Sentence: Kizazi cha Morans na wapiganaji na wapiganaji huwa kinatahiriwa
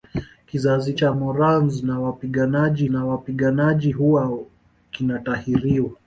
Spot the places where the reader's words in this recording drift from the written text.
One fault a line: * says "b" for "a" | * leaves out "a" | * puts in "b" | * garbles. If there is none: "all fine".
all fine